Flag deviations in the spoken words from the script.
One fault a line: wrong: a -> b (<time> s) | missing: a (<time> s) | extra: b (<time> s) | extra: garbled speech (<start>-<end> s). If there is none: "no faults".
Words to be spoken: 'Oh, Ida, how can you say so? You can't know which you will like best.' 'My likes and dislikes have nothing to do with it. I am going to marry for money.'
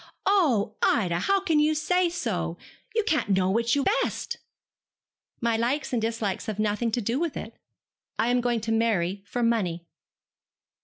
missing: will like (3.8 s)